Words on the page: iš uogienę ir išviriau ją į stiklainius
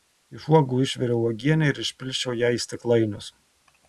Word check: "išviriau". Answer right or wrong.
wrong